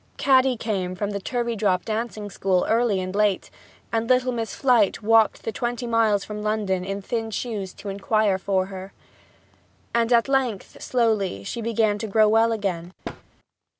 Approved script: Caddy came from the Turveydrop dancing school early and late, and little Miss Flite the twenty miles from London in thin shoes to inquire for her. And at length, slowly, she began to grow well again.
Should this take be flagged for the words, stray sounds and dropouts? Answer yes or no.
yes